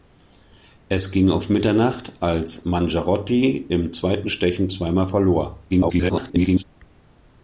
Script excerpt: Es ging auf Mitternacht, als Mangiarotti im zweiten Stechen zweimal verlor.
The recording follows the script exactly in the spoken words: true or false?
false